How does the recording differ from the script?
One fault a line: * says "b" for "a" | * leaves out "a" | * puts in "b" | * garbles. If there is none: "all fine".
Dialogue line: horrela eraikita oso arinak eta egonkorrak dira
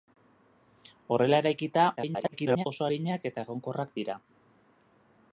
* garbles